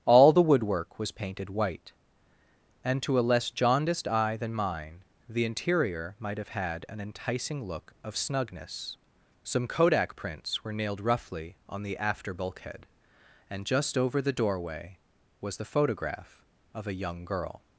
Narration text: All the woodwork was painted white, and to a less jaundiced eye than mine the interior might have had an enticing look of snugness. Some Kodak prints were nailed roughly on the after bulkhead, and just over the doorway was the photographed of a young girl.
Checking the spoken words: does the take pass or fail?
fail